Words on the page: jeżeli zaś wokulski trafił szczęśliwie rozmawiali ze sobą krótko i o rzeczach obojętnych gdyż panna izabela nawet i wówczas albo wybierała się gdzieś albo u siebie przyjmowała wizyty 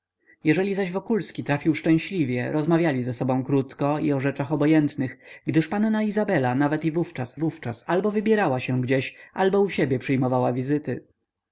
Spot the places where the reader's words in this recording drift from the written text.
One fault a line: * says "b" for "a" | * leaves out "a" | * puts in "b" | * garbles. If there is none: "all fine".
* puts in "wówczas"